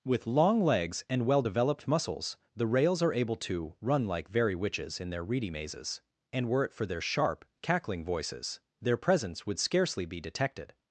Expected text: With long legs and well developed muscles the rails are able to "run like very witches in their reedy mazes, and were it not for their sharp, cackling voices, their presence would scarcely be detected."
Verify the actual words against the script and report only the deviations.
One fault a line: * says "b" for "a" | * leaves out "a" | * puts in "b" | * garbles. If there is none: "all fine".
* leaves out "not"